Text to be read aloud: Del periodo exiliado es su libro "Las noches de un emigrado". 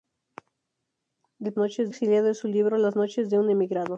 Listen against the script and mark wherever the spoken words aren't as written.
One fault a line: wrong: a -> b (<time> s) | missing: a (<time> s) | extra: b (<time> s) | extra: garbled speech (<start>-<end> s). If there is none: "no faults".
wrong: periodo -> noches (1.6 s)